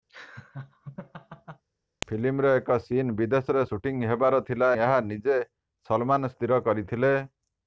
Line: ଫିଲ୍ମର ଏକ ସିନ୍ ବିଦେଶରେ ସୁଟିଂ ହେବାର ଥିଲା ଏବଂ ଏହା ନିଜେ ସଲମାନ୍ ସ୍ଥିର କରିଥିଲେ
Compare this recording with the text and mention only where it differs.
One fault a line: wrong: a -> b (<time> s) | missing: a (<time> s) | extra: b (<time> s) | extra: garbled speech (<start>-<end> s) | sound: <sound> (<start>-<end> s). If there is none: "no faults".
sound: laugh (0.1-1.6 s)
missing: ଏବଂ (4.7 s)